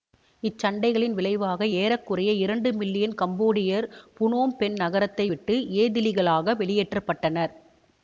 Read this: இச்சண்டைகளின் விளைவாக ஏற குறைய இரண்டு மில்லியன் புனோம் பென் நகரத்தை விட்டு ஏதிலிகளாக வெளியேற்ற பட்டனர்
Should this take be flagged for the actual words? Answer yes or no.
yes